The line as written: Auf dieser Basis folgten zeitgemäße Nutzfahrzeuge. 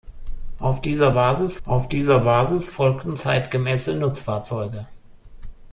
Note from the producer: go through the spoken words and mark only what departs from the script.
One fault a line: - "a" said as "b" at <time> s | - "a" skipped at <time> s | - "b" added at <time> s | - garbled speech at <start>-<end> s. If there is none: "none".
- "auf dieser Basis" added at 1.6 s